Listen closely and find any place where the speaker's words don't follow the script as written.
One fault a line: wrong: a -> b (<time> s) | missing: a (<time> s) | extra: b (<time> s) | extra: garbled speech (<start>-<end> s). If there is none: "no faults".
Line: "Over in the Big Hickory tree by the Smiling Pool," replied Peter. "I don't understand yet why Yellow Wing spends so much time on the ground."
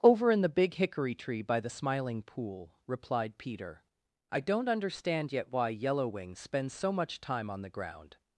no faults